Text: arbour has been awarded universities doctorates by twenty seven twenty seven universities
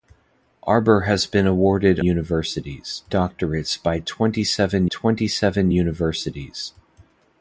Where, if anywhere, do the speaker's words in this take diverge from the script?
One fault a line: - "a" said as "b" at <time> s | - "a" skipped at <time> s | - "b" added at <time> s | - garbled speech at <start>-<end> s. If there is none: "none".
none